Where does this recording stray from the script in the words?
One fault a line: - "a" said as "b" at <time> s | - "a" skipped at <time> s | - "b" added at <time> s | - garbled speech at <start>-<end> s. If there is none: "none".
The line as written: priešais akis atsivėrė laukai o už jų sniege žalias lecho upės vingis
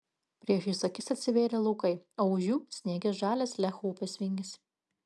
none